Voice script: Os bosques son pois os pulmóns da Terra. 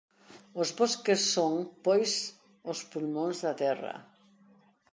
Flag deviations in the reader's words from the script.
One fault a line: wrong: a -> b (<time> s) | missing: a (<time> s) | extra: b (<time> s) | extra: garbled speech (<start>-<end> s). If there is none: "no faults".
no faults